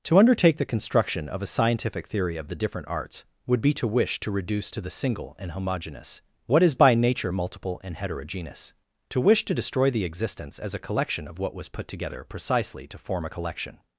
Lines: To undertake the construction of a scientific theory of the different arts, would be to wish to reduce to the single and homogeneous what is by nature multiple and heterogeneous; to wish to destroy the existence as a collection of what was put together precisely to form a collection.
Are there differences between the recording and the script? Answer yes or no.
no